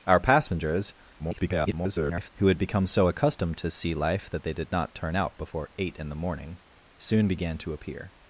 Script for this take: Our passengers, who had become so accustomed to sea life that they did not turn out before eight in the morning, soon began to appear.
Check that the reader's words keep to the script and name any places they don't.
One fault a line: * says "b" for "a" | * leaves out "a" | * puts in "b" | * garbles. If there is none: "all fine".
* garbles